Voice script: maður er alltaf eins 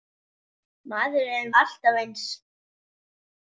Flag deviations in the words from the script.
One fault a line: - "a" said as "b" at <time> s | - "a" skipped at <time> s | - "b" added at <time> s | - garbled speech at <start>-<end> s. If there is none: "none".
none